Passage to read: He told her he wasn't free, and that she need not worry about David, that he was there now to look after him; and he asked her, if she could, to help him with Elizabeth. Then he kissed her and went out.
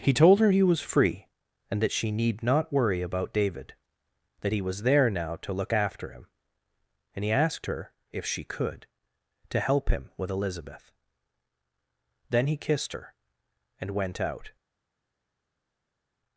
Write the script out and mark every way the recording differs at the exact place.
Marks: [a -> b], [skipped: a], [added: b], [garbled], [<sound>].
He told her he [wasn't -> was] free, and that she need not worry about David, that he was there now to look after him; and he asked her, if she could, to help him with Elizabeth. Then he kissed her and went out.